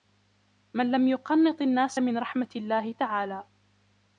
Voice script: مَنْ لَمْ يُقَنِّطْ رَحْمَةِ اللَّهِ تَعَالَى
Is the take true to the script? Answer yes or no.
no